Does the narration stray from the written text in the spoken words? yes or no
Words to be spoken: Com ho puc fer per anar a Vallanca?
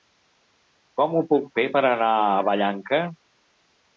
no